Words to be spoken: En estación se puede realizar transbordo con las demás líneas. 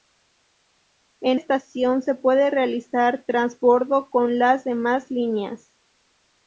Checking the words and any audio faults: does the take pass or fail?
pass